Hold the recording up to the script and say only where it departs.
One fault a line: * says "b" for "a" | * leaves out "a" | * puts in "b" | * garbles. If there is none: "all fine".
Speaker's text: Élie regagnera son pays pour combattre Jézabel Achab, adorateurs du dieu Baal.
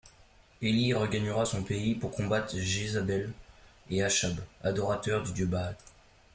* puts in "et"